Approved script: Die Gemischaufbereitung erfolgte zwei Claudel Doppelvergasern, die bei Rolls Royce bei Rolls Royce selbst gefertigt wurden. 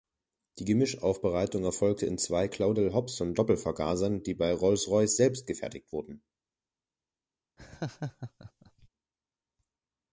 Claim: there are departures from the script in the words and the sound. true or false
true